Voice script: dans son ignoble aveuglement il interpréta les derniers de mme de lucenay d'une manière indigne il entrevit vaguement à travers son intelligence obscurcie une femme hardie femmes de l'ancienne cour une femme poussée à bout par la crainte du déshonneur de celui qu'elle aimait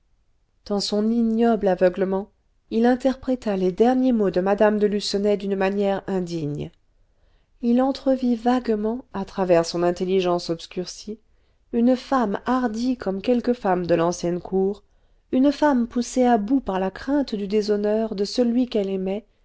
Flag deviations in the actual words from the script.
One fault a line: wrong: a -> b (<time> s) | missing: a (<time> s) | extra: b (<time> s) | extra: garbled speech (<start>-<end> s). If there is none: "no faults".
extra: mots (4.1 s)
extra: comme quelques (13.0 s)